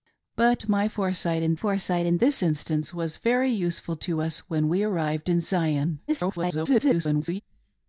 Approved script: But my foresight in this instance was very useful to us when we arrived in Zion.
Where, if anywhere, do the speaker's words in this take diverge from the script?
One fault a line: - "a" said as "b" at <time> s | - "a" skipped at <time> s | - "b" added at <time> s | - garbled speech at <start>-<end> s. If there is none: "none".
- "foresight in" added at 1.5 s
- garbled speech at 6.1-7.4 s